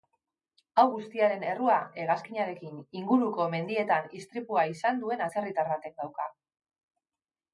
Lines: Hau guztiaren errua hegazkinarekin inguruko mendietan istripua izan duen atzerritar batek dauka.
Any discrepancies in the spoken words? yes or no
no